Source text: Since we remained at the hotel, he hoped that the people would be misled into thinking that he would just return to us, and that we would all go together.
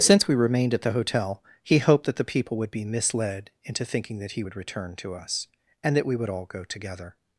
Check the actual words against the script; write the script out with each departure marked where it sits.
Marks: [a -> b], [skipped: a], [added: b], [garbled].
Since we remained at the hotel, he hoped that the people would be misled into thinking that he would [skipped: just] return to us, and that we would all go together.